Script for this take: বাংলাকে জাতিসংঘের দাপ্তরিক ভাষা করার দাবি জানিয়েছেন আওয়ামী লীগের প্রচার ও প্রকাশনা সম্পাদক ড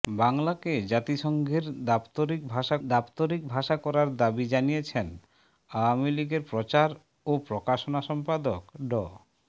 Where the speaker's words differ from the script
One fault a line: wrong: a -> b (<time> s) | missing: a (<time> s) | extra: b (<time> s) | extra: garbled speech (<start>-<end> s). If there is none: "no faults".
extra: দাপ্তরিক ভাষা (2.9 s)